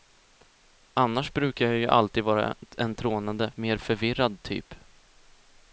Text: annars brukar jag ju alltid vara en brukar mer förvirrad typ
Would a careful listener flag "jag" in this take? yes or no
no